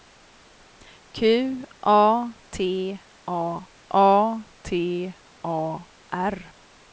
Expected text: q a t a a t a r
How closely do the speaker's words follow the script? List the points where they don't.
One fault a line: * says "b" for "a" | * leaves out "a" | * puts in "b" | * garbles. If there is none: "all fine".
all fine